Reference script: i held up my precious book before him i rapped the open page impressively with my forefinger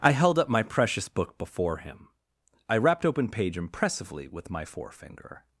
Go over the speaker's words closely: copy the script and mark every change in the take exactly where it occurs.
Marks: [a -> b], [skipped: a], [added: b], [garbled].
i held up my precious book before him i rapped [skipped: the] open page impressively with my forefinger